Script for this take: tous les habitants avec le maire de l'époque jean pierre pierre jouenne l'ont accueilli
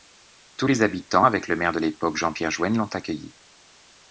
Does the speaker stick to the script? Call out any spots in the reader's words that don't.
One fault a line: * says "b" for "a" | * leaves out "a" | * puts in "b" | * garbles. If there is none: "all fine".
* leaves out "pierre"